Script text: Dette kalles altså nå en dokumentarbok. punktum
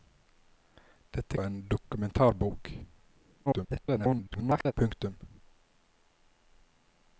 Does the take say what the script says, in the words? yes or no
no